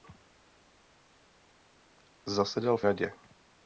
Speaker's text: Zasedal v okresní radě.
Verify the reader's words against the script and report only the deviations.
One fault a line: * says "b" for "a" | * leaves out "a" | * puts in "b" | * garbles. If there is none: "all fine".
* leaves out "okresní"